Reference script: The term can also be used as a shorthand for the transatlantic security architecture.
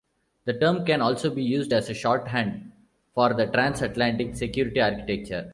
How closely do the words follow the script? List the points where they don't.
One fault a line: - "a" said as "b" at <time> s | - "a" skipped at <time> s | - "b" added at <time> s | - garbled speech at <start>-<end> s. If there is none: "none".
none